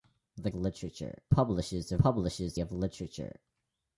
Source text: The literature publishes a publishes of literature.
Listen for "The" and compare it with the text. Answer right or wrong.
right